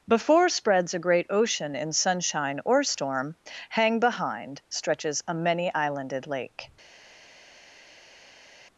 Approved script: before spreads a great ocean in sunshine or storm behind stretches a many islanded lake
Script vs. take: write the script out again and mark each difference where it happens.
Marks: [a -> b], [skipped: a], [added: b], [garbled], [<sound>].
before spreads a great ocean in sunshine or storm [added: hang] behind stretches a many islanded lake